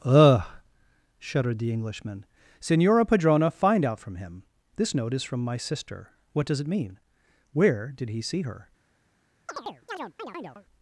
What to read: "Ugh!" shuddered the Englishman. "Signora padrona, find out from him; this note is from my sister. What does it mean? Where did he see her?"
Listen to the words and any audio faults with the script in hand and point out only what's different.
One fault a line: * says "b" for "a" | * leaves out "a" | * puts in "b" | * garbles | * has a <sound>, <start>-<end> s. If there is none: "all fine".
* has a chirp, 9.5-10.7 s